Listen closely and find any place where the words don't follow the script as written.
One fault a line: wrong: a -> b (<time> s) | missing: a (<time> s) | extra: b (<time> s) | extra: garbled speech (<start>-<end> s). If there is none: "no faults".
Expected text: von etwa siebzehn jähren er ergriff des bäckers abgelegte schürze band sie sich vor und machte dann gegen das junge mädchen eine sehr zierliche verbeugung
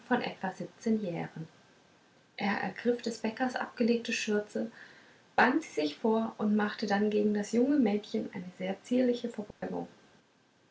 no faults